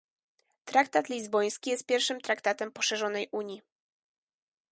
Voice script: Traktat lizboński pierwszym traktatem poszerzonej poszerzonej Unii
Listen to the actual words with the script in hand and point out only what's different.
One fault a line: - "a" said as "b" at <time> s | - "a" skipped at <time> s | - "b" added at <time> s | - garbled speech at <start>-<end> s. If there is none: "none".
- "jest" added at 1.7 s
- "poszerzonej" skipped at 3.3 s